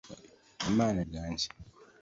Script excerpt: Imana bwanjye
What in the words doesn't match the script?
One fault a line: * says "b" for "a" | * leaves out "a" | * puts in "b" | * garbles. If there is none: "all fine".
all fine